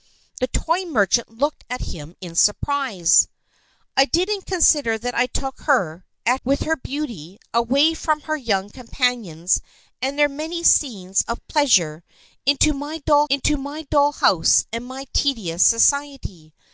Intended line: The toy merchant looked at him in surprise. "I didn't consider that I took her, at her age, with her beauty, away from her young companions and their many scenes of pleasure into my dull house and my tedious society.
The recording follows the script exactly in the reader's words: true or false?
false